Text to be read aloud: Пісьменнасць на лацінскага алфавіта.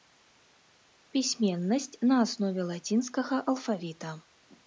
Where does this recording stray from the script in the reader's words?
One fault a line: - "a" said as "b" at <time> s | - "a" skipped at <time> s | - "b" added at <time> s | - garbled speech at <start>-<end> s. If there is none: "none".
- "аснове" added at 2.2 s